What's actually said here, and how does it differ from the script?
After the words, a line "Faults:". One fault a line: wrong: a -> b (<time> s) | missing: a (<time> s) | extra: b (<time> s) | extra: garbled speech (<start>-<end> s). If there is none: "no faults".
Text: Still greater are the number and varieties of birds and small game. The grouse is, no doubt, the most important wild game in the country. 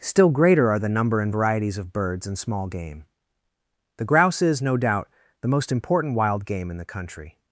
Still greater are the number and varieties of birds and small game. The grouse is, no doubt, the most important wild game in the country.
Faults:
no faults